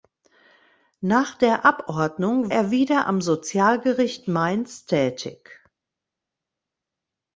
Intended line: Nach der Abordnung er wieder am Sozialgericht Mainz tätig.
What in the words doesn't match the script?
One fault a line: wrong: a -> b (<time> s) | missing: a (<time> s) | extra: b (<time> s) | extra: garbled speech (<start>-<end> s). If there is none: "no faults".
no faults